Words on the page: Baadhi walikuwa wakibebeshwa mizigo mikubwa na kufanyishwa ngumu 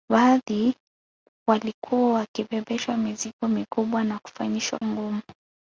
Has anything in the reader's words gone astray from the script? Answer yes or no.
no